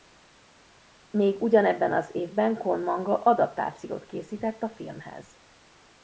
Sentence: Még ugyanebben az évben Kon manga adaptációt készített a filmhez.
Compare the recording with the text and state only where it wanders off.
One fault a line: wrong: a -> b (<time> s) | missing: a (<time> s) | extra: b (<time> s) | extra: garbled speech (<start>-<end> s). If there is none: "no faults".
no faults